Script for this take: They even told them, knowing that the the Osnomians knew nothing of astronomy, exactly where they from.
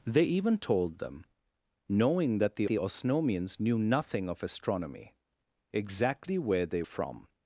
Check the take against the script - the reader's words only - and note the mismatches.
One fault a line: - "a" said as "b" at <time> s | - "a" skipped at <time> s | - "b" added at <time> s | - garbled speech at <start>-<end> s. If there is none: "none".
none